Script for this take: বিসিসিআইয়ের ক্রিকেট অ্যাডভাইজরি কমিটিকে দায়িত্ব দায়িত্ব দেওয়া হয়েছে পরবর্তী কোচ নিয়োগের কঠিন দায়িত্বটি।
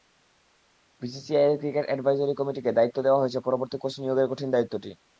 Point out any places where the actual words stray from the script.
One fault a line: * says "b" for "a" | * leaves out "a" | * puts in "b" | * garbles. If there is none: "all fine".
* leaves out "দায়িত্ব"